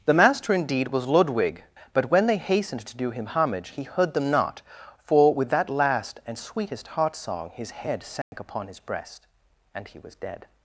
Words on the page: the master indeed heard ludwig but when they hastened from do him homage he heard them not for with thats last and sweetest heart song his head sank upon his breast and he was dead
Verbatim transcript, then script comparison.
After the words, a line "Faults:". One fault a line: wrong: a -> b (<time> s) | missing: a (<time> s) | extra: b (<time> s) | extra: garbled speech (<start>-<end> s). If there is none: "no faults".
the master indeed was ludwig but when they hastened to do him homage he heard them not for with that last and sweetest heart song his head sank upon his breast and he was dead
Faults:
wrong: heard -> was (0.9 s)
wrong: from -> to (2.9 s)
wrong: thats -> that (5.5 s)